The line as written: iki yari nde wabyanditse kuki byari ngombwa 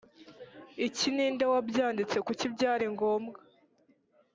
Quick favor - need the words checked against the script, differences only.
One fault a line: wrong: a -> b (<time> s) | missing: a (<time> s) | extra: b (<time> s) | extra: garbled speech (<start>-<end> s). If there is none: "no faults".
wrong: yari -> ni (1.1 s)